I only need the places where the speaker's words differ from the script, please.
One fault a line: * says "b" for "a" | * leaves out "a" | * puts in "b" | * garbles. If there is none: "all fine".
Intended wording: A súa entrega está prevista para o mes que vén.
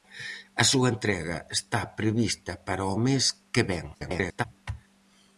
* garbles